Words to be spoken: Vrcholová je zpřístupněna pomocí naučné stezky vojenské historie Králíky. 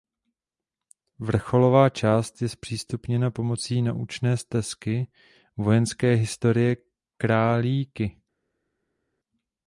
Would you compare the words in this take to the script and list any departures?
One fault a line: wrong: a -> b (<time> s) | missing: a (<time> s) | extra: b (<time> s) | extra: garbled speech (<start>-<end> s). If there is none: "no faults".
extra: část (1.9 s)